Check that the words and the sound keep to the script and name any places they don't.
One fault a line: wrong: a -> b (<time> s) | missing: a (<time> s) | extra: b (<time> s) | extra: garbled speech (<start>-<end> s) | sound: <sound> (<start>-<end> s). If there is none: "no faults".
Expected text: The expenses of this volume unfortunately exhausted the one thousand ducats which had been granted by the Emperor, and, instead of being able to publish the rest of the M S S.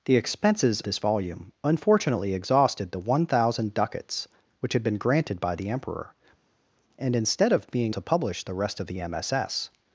missing: of (0.8 s)
missing: able (8.0 s)